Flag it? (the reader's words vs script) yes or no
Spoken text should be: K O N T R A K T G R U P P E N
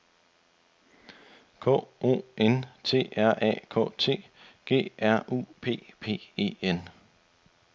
no